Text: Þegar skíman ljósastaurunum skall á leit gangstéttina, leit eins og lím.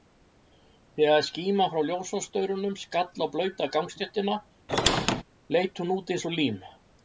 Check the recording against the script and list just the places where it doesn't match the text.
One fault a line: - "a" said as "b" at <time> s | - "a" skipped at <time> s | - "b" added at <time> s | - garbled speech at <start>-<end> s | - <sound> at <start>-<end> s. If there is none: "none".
- "frá" added at 1.7 s
- "leit" said as "blauta" at 3.4 s
- squeak at 4.7-5.2 s
- "hún út" added at 5.8 s